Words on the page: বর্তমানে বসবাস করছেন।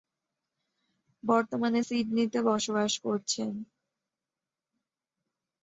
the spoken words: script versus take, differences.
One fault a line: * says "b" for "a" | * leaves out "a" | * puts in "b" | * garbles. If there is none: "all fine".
* puts in "সিডনিতে"